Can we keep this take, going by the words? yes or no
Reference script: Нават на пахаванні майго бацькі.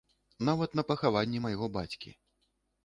yes